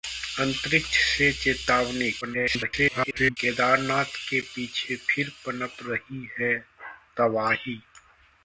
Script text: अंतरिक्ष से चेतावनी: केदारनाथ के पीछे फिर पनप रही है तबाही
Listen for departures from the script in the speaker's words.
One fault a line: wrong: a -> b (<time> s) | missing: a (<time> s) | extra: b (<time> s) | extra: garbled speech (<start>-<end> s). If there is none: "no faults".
extra: garbled speech (2.2-3.4 s)